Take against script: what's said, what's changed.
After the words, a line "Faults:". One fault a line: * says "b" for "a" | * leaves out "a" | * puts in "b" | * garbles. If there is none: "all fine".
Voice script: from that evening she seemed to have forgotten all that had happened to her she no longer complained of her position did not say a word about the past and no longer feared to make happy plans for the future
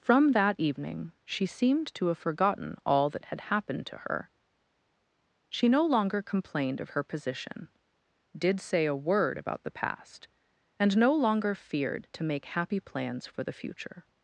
from that evening she seemed to have forgotten all that had happened to her she no longer complained of her position did say a word about the past and no longer feared to make happy plans for the future
Faults:
* leaves out "not"